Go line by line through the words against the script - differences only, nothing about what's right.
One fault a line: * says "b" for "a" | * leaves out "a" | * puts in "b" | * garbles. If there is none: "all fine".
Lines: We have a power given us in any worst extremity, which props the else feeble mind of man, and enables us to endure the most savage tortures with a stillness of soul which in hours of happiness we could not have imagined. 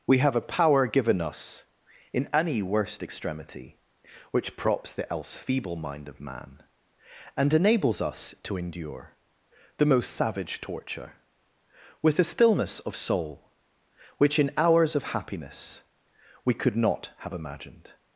* says "torture" for "tortures"